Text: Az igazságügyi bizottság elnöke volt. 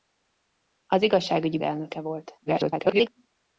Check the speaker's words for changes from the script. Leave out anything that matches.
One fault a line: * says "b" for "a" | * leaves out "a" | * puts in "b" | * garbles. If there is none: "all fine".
* leaves out "bizottság"
* garbles